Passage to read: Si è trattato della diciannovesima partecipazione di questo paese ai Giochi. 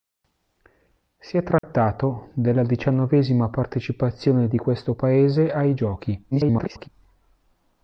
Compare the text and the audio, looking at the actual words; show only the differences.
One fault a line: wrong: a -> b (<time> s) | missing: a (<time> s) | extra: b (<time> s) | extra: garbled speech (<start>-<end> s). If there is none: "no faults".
extra: garbled speech (6.3-6.9 s)